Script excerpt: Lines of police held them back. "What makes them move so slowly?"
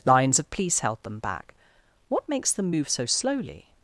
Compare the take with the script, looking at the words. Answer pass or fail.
pass